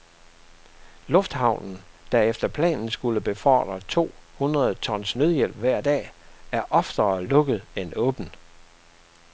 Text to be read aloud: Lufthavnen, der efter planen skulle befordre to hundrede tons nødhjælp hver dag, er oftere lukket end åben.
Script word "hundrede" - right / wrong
right